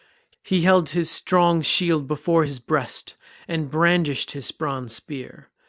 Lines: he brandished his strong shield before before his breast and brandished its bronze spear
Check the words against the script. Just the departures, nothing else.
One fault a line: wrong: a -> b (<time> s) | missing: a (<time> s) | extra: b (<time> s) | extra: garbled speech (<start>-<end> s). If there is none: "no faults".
wrong: brandished -> held (0.6 s)
missing: before (2.4 s)
wrong: its -> his (4.3 s)